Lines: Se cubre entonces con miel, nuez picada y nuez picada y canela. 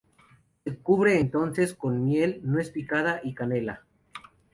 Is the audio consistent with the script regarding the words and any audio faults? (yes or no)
no